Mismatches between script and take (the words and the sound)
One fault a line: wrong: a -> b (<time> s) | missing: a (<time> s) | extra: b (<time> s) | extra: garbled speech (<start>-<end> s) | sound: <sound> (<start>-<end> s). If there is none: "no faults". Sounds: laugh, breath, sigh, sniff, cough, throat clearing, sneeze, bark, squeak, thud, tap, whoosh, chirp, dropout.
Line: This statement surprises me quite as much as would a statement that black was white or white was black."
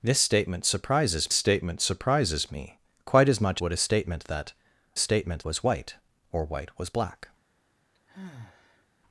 extra: statement surprises (1.3 s)
missing: as (3.6 s)
wrong: black -> statement (5.0 s)
sound: sigh (7.9-8.9 s)